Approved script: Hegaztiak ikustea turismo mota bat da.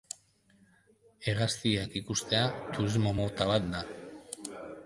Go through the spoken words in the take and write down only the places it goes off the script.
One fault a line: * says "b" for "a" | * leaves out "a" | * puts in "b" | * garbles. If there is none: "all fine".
all fine